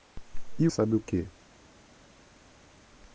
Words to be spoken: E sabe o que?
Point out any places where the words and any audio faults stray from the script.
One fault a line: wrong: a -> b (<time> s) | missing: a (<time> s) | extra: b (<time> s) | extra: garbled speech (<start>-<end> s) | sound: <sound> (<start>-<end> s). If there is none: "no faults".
no faults